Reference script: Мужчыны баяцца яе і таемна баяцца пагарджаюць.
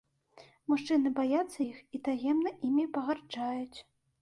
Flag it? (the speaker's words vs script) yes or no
yes